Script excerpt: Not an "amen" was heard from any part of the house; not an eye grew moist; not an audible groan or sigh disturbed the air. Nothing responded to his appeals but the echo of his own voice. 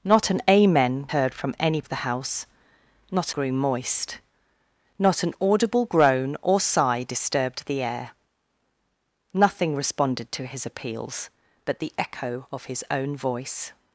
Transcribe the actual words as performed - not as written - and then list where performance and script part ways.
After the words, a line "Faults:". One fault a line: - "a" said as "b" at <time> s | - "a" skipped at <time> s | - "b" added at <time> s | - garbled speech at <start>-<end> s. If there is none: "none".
Not an "amen" heard from any of the house; not grew moist; not an audible groan or sigh disturbed the air. Nothing responded to his appeals but the echo of his own voice.
Faults:
- "was" skipped at 1.1 s
- "part" skipped at 1.8 s
- "an eye" skipped at 3.3 s